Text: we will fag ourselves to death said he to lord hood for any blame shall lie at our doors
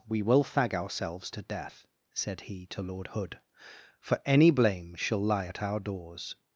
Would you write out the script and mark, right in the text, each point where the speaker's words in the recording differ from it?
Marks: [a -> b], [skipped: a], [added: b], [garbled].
we will fag ourselves to death said he to lord hood for any blame shall lie at our doors